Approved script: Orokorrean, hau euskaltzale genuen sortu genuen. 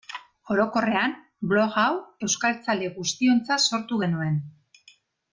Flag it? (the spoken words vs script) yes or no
yes